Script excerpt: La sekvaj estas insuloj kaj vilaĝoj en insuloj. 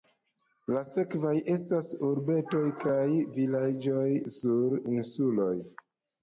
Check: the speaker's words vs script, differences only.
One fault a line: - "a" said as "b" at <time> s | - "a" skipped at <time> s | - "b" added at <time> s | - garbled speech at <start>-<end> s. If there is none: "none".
- "insuloj" said as "urbetoj" at 2.1 s
- "en" said as "sur" at 4.4 s